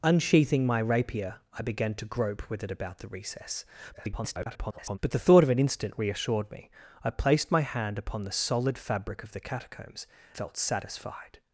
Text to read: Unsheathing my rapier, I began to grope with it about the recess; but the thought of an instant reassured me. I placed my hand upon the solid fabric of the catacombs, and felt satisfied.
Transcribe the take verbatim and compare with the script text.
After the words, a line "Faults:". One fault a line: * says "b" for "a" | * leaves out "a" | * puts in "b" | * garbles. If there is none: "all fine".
Unsheathing my rapier, I began to grope with it about the recess; [garbled] but the thought of an instant reassured me. I placed my hand upon the solid fabric of the catacombs, felt satisfied.
Faults:
* garbles
* leaves out "and"